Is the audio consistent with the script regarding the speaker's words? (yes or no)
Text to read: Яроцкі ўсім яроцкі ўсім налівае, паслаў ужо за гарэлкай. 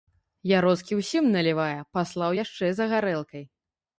no